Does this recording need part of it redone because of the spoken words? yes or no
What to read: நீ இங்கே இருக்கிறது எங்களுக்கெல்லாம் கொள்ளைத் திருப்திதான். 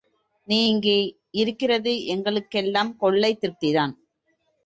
no